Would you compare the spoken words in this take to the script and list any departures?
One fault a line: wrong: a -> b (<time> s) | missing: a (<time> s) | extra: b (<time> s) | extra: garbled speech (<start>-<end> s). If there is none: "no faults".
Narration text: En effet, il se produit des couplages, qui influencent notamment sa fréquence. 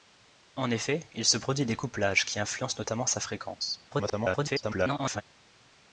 extra: garbled speech (3.9-5.2 s)